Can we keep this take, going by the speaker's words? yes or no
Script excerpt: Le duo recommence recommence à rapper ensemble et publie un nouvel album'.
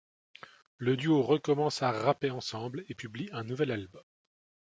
no